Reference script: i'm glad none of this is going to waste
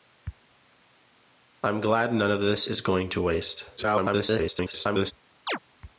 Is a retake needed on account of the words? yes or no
yes